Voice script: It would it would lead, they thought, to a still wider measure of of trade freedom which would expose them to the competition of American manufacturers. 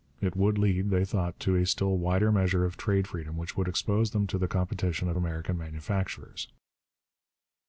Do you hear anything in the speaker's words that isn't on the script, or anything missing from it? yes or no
yes